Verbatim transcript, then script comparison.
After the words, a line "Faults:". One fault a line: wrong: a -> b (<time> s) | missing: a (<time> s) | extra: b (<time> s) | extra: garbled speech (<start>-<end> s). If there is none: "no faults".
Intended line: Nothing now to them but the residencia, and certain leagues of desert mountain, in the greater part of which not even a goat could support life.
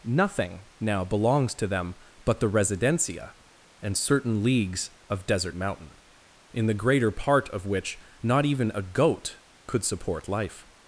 Nothing now belongs to them but the residencia, and certain leagues of desert mountain, in the greater part of which not even a goat could support life.
Faults:
extra: belongs (1.1 s)